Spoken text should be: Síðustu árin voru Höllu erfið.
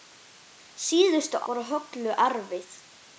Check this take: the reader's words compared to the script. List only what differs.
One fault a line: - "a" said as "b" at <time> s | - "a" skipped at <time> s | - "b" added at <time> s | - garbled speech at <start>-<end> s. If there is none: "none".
- "árin" skipped at 1.4 s